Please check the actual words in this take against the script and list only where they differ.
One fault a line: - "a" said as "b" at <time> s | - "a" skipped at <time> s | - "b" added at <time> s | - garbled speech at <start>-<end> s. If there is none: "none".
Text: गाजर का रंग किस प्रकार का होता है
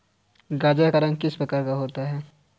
none